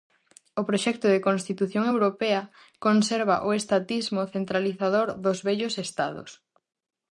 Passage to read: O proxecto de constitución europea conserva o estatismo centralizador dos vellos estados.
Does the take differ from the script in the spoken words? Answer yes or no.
no